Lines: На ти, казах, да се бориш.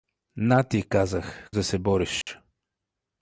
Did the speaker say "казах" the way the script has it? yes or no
yes